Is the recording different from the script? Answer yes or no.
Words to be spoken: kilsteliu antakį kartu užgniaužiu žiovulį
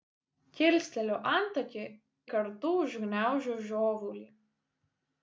no